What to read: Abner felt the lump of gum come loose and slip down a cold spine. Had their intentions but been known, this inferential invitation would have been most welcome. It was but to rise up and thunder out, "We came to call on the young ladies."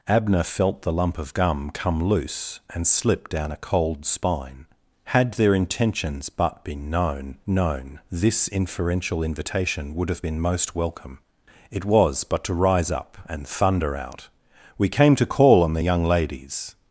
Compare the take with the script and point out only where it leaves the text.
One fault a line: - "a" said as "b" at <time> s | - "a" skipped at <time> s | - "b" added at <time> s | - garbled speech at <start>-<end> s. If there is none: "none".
- "known" added at 7.5 s